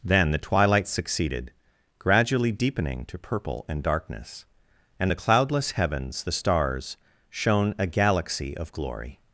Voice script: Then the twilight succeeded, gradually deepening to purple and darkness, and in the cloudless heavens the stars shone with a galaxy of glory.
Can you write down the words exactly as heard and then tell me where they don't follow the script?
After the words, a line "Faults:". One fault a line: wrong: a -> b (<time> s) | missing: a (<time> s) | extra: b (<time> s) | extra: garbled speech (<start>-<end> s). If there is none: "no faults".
Then the twilight succeeded, gradually deepening to purple and darkness, and the cloudless heavens the stars shone a galaxy of glory.
Faults:
missing: in (5.1 s)
missing: with (7.7 s)